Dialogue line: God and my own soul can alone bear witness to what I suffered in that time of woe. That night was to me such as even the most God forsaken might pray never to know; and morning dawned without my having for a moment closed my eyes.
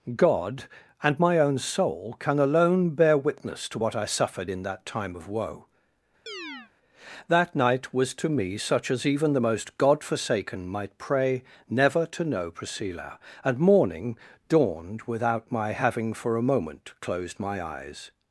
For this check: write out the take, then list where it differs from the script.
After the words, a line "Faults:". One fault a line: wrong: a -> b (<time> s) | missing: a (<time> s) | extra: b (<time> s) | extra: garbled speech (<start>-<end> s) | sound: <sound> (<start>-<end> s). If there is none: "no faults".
God and my own soul can alone bear witness to what I suffered in that time of woe. That night was to me such as even the most God forsaken might pray never to know; priscilla and morning dawned without my having for a moment closed my eyes.
Faults:
sound: chirp (6.3-6.7 s)
extra: priscilla (12.5 s)